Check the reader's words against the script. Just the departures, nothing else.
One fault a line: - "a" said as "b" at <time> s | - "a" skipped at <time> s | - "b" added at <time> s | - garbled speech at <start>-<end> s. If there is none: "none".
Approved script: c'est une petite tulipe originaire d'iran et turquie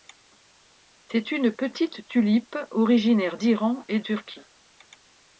none